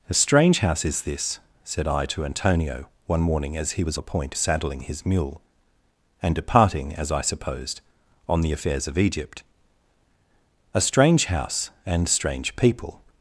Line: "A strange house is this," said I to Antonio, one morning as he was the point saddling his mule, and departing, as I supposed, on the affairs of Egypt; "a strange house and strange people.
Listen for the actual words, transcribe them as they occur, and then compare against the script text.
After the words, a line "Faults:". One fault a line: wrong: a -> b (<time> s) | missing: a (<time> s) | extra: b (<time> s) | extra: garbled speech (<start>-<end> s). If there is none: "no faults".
"A strange house is this," said I to Antonio, one morning as he was the point saddling his mule, and departing, as I supposed, on the affairs of Egypt; "a strange house and strange people.
Faults:
no faults